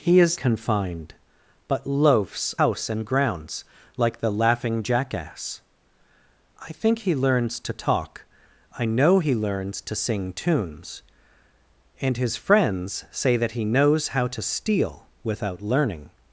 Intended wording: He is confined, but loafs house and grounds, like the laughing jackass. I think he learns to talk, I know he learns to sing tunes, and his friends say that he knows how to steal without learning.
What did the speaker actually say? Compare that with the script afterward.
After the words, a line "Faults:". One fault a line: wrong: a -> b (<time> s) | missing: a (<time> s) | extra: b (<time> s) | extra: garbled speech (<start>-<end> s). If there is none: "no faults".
He is confined, but loafs house and grounds, like the laughing jackass. I think he learns to talk, I know he learns to sing tunes, and his friends say that he knows how to steal without learning.
Faults:
no faults